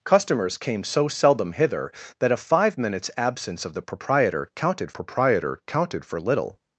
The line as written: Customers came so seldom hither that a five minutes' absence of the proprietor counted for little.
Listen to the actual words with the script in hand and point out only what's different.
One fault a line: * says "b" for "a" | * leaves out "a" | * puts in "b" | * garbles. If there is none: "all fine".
* puts in "proprietor counted"